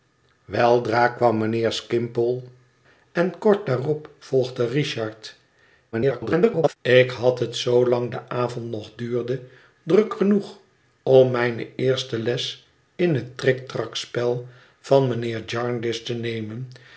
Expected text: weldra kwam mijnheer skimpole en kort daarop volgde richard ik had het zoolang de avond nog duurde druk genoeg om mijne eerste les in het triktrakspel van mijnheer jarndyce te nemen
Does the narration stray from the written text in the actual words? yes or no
yes